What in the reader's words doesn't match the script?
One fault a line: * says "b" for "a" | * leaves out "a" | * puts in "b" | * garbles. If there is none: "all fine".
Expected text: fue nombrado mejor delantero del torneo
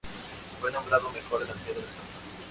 all fine